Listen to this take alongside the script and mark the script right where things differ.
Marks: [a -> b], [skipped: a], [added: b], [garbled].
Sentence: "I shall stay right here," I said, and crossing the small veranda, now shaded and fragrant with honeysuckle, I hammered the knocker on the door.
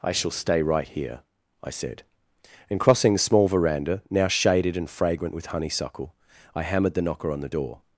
"I shall stay right here," I said, and crossing the small veranda, now shaded and fragrant with honeysuckle, I hammered the knocker on the door.